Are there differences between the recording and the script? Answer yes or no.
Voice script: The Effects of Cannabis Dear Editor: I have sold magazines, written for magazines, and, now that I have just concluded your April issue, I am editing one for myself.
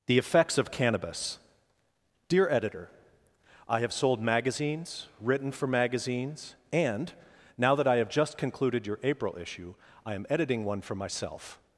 no